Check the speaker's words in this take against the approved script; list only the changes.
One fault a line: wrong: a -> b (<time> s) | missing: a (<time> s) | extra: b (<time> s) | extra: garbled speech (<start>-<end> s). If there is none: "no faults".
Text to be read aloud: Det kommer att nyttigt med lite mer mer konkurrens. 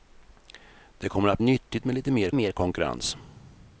no faults